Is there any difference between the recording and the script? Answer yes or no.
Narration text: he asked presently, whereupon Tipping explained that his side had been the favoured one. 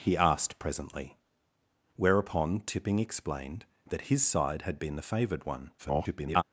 yes